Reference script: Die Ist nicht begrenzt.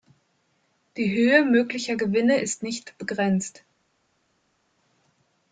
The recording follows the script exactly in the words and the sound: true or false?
false